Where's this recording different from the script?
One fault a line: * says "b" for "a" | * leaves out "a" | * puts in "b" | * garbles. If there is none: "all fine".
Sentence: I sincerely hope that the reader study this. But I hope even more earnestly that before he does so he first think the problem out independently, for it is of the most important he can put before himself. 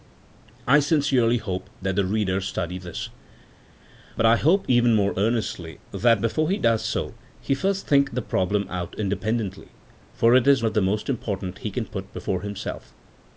all fine